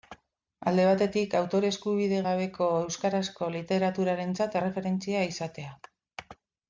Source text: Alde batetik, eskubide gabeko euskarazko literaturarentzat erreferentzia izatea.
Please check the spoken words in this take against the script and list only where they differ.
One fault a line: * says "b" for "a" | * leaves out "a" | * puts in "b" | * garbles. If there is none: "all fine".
* puts in "autore"